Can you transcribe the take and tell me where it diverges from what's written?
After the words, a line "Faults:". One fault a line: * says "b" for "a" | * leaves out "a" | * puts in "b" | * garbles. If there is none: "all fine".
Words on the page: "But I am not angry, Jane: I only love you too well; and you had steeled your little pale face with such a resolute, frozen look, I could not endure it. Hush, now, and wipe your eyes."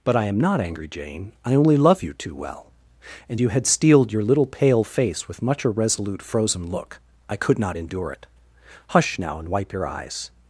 "But I am not angry, Jane: I only love you too well; and you had steeled your little pale face with much a resolute, frozen look, I could not endure it. Hush, now, and wipe your eyes."
Faults:
* says "much" for "such"